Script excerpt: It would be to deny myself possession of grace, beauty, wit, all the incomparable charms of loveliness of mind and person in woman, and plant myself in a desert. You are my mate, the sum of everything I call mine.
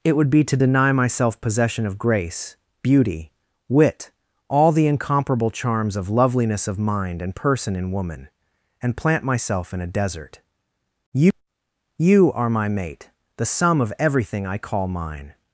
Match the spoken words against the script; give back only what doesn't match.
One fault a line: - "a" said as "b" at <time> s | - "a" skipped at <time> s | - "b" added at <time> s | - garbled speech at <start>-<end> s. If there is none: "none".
- "You" added at 12.0 s